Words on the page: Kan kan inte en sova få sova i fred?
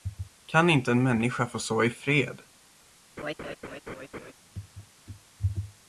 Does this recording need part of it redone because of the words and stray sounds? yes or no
yes